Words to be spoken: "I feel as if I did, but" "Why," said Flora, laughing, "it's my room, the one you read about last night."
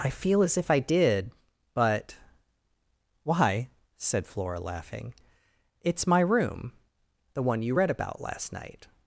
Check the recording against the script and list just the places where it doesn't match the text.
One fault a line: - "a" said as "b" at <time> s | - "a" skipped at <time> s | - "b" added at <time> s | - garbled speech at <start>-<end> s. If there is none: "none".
none